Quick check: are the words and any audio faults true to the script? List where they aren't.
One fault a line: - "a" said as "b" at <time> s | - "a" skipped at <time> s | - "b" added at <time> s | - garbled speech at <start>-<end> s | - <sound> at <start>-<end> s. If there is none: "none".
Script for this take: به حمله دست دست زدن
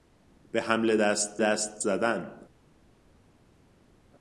none